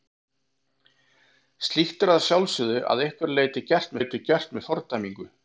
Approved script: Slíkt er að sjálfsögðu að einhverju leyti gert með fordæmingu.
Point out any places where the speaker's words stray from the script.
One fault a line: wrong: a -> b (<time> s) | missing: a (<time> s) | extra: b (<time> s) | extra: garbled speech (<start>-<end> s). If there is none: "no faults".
extra: leyti gert (4.0 s)